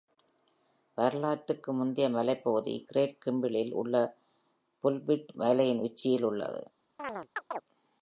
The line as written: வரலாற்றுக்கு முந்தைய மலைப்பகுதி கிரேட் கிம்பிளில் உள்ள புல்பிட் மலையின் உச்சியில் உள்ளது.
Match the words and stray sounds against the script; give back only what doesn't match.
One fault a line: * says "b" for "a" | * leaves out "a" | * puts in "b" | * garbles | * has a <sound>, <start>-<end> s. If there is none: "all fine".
* has a chirp, 7.0-7.6 s